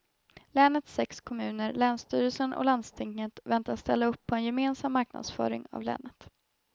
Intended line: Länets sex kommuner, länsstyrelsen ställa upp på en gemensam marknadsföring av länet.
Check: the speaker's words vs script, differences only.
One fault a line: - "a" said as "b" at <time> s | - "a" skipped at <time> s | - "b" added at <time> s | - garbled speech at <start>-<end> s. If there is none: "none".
- "och landstinget väntas" added at 2.5 s